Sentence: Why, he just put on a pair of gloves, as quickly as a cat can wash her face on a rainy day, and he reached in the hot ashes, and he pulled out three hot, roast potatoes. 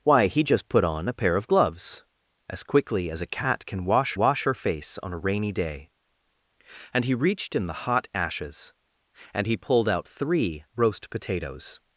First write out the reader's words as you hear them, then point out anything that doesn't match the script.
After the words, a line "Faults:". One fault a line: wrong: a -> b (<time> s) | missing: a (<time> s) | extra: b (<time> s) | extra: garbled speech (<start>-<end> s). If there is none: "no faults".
Why, he just put on a pair of gloves, as quickly as a cat can wash wash her face on a rainy day, and he reached in the hot ashes, and he pulled out three roast potatoes.
Faults:
extra: wash (4.2 s)
missing: hot (10.6 s)